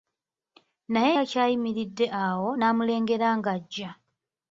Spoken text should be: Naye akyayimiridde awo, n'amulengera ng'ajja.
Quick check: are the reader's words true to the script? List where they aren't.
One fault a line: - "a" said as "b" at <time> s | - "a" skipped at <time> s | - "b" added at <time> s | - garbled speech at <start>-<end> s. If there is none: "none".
none